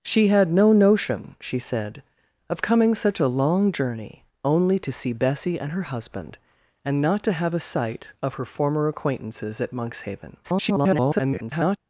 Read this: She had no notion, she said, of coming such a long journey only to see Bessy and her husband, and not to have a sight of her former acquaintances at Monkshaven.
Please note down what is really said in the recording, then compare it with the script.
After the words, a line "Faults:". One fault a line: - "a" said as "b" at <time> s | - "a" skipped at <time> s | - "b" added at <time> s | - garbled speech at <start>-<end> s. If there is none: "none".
She had no notion, she said, of coming such a long journey only to see Bessy and her husband, and not to have a sight of her former acquaintances at Monkshaven. [garbled]
Faults:
- garbled speech at 10.4-11.8 s